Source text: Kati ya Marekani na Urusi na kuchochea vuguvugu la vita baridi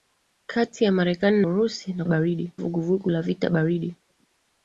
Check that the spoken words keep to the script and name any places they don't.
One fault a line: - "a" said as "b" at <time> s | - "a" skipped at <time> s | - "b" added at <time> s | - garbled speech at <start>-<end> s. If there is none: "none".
- "na" skipped at 1.4 s
- "kuchochea" said as "baridi" at 2.0 s